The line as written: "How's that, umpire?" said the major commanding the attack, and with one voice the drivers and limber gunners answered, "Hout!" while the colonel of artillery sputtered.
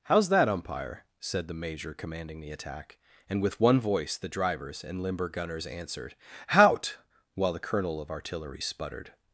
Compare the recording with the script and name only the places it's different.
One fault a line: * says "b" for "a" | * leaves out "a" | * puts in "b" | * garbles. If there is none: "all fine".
all fine